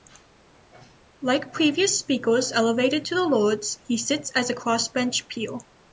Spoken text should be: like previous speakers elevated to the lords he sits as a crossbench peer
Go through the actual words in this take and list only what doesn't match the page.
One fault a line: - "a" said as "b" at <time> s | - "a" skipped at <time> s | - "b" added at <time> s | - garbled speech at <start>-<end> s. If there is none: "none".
none